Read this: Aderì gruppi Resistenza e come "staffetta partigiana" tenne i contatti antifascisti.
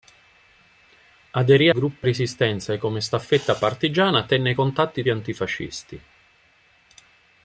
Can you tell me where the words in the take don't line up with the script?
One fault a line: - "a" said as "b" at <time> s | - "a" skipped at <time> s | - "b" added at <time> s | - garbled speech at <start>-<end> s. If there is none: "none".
none